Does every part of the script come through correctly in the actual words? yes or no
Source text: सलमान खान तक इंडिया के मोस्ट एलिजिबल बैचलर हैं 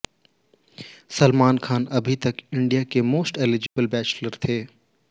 no